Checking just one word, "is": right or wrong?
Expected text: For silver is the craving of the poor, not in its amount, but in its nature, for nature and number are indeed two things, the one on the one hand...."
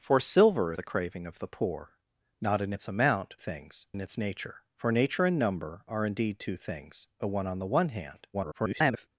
wrong